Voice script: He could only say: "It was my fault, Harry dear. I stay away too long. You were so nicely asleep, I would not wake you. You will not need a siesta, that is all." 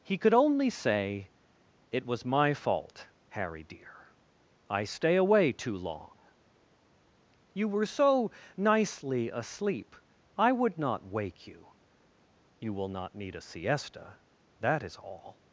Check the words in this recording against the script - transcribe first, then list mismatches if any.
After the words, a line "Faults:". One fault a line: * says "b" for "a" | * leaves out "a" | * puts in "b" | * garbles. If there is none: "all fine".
He could only say: "It was my fault, Harry dear. I stay away too long. You were so nicely asleep, I would not wake you. You will not need a siesta, that is all."
Faults:
all fine